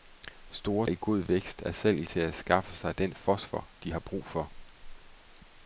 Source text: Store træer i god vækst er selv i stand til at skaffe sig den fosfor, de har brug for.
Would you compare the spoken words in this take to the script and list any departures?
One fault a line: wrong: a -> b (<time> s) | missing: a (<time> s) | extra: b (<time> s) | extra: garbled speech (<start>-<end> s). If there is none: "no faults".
missing: træer (0.9 s)
missing: stand (2.0 s)